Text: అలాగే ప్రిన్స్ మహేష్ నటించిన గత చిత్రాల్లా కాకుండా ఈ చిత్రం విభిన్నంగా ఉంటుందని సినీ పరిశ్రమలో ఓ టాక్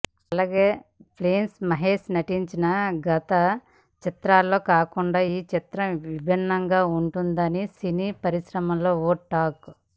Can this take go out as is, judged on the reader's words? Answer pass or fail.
pass